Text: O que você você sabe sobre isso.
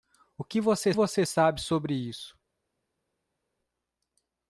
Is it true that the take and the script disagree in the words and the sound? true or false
false